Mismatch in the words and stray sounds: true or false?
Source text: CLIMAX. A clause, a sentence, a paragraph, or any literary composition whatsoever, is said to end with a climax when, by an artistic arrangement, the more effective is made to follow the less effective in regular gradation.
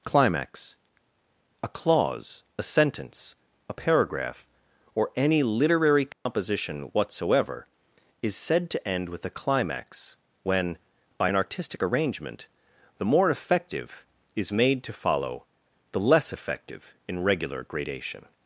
true